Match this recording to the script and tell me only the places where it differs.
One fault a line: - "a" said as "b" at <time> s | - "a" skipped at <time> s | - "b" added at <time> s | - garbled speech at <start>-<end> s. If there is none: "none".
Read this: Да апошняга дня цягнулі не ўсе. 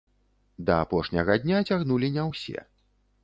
none